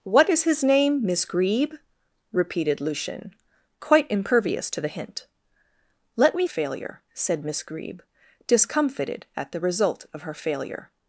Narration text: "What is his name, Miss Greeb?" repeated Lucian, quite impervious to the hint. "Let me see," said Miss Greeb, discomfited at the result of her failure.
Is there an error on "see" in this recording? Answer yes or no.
yes